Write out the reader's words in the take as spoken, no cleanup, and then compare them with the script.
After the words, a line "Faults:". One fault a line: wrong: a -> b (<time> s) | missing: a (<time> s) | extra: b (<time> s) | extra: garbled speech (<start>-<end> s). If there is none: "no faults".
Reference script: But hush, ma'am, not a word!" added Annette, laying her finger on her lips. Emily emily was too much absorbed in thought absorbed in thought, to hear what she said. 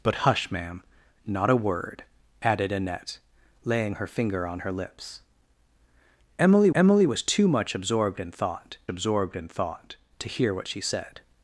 But hush, ma'am, not a word!" added Annette, laying her finger on her lips. Emily emily was too much absorbed in thought absorbed in thought, to hear what she said.
Faults:
no faults